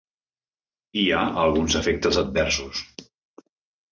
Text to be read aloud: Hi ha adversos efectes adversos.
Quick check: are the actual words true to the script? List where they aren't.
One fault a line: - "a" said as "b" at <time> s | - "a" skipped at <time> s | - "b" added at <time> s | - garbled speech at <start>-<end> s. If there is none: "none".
- "adversos" said as "alguns" at 1.4 s